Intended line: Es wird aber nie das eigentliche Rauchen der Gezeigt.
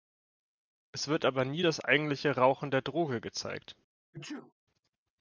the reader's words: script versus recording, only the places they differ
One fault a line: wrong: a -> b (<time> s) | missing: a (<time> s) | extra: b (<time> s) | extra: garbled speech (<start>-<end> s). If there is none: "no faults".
extra: Droge (2.8 s)